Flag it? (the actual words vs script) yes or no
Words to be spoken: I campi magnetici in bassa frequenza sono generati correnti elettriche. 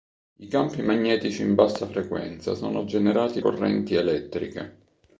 no